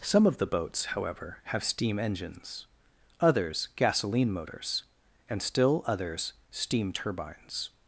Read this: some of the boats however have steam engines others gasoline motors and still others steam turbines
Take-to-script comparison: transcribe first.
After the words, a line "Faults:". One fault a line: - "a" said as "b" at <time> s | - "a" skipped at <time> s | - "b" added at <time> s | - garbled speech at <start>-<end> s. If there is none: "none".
some of the boats however have steam engines others gasoline motors and still others steam turbines
Faults:
none